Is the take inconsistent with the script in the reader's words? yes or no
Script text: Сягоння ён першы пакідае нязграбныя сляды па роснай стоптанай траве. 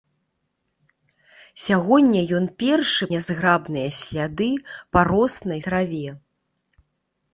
yes